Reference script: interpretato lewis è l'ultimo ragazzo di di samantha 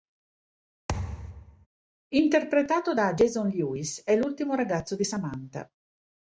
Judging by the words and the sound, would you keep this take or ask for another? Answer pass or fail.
fail